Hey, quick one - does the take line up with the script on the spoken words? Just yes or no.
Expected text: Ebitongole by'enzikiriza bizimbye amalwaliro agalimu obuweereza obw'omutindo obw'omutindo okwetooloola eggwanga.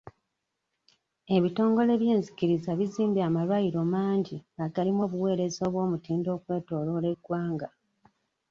no